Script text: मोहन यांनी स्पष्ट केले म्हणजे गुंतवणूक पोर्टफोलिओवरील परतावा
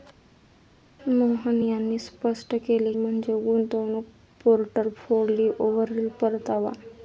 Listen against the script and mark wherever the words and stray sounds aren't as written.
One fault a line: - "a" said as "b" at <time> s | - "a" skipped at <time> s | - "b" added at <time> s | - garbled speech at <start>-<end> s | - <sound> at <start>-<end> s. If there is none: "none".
none